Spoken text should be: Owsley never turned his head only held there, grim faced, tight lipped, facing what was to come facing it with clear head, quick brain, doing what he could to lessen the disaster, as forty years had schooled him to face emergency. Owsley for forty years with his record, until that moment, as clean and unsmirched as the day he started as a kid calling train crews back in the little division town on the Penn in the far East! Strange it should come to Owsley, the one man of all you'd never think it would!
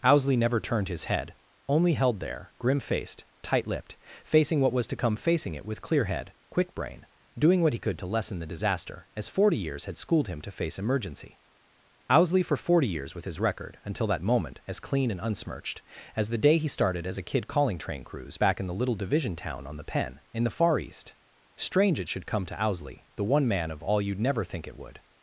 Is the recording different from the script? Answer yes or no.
no